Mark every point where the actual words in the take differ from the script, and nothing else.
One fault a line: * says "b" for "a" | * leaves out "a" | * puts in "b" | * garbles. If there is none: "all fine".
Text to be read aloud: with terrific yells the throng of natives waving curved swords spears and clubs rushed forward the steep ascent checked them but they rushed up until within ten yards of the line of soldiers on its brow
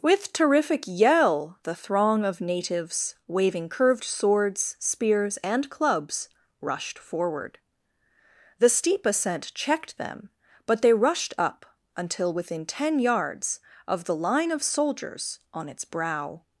* says "yell" for "yells"